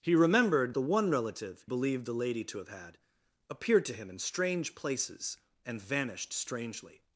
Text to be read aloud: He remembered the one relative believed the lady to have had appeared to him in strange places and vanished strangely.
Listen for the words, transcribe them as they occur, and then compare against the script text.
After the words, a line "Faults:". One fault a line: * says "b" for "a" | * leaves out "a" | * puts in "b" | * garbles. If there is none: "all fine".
He remembered the one relative believed the lady to have had appeared to him in strange places and vanished strangely.
Faults:
all fine